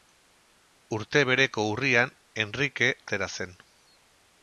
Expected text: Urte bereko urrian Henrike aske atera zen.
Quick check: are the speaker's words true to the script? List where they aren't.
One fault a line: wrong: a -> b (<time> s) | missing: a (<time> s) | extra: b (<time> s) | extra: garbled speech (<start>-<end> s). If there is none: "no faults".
missing: aske (2.9 s)